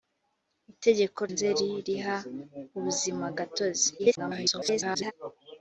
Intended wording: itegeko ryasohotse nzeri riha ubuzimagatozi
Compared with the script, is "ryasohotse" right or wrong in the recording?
wrong